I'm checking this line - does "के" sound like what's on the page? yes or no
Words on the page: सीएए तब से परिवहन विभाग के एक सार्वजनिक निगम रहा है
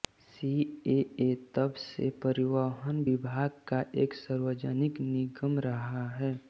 no